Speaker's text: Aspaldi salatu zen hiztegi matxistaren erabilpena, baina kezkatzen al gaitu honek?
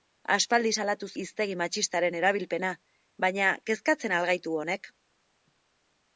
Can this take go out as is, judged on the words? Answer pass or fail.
fail